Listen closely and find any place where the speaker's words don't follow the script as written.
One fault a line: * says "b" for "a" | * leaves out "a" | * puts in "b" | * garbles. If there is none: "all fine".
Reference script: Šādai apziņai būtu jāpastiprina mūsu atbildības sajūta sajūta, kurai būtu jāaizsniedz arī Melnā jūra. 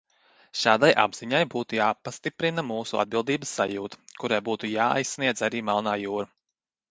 * leaves out "sajūta"